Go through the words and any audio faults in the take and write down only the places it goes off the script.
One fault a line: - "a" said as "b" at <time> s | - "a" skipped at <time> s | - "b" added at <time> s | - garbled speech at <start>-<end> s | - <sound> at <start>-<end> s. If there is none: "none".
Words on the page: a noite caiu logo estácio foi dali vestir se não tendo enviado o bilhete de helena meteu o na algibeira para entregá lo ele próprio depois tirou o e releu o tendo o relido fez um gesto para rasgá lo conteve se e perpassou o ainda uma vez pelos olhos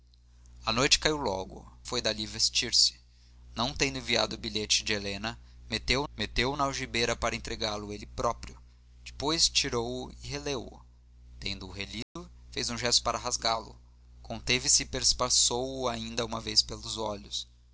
- "estácio" skipped at 1.7 s
- "meteu" added at 6.1 s
- dropout at 12.0-12.2 s